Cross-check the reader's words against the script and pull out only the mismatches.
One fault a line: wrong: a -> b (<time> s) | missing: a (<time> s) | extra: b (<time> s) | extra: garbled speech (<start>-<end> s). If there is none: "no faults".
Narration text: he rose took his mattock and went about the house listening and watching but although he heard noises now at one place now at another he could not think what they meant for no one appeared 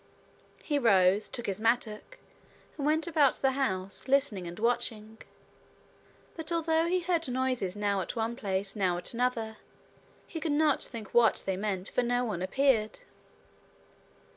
no faults